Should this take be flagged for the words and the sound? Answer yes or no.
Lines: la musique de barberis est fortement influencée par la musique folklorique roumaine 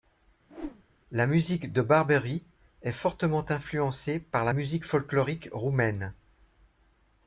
yes